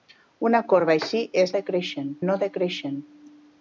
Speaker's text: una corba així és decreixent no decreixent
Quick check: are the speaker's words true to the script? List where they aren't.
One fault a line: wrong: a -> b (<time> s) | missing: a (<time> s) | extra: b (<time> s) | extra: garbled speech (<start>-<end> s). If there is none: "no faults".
no faults